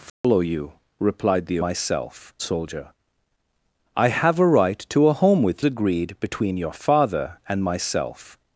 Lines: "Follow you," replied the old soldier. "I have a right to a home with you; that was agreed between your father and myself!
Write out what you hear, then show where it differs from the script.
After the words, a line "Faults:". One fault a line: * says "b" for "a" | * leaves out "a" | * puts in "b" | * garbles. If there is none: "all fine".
"Follow you," replied the myself soldier. "I have a right to a home with agreed between your father and myself!
Faults:
* says "myself" for "old"
* leaves out "you that was"